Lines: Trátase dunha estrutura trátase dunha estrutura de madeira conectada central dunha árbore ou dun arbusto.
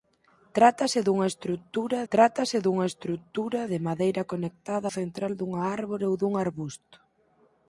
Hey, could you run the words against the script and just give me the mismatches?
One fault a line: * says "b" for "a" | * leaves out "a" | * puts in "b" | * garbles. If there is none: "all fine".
all fine